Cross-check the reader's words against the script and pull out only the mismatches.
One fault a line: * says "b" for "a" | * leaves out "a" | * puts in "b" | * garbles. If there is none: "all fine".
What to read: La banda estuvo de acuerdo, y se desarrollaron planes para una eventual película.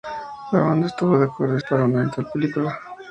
* leaves out "se desarrollaron planes"